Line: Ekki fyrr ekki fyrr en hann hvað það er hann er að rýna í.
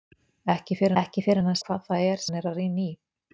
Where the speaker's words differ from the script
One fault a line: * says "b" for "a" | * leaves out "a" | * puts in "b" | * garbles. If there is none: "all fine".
all fine